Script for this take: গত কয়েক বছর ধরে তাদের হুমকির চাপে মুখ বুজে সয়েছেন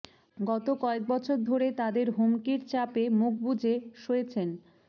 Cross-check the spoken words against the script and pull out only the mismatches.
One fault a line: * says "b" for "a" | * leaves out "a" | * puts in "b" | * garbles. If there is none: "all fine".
all fine